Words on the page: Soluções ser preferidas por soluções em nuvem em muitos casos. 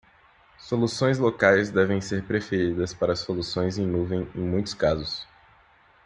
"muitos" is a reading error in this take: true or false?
false